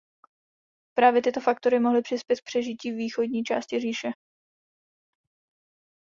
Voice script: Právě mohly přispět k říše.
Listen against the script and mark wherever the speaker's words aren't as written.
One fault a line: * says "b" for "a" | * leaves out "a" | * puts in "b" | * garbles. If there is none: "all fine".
* puts in "tyto faktory"
* puts in "přežití východní části"